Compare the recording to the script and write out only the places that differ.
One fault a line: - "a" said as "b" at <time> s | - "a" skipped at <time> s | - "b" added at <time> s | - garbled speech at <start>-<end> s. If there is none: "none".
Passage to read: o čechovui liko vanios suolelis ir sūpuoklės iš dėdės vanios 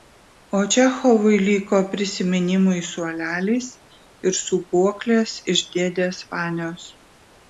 - "vanios" said as "prisiminimui" at 1.9 s